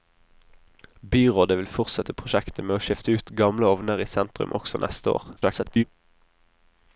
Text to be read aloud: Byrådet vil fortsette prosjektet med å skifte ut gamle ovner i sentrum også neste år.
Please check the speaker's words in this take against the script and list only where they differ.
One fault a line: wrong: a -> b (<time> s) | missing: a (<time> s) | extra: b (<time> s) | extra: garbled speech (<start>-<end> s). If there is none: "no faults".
extra: garbled speech (5.4-5.8 s)